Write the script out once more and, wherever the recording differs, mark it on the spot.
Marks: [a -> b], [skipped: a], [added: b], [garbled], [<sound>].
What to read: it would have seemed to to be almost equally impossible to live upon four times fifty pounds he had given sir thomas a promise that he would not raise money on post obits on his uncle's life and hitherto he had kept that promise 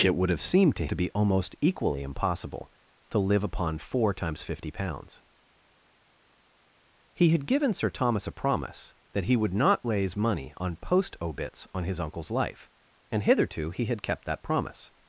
it would have seemed to to be almost equally impossible to live upon four times fifty pounds he had given sir thomas a promise that he would not raise money on post obits on his uncle's life and hitherto he had kept that promise